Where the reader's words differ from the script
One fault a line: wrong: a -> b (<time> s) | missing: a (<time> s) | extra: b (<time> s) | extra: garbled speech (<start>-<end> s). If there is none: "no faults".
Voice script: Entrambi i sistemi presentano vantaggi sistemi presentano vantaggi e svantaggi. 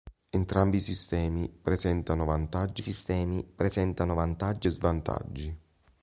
no faults